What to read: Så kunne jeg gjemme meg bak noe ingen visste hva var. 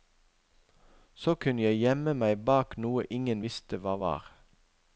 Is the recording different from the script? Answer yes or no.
no